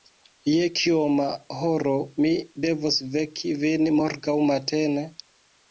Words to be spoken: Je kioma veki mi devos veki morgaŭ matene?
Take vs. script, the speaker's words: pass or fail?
fail